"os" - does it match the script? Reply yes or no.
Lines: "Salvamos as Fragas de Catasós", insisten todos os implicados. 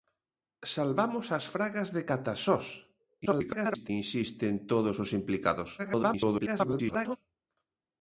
yes